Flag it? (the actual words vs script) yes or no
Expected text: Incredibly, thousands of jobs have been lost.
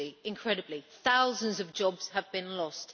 no